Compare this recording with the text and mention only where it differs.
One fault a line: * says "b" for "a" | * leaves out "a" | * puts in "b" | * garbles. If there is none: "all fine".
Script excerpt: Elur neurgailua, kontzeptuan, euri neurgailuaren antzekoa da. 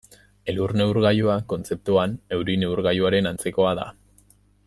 all fine